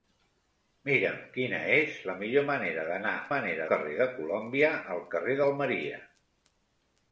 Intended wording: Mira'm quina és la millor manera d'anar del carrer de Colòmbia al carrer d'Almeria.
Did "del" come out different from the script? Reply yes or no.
yes